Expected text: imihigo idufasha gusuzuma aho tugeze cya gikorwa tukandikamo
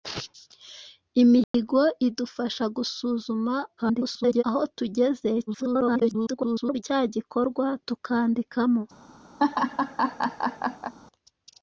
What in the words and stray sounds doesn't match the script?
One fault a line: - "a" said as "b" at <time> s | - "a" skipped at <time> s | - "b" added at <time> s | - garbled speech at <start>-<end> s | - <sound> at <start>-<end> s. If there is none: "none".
- dropout at 1.4-1.5 s
- garbled speech at 3.8-4.4 s
- garbled speech at 5.5-6.8 s
- laugh at 9.4-10.9 s